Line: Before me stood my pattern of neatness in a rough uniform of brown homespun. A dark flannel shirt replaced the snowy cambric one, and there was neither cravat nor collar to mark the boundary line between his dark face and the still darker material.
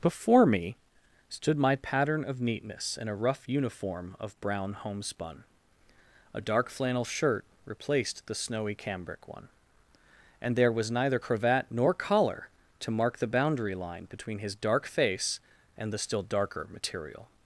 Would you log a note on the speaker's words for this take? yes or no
no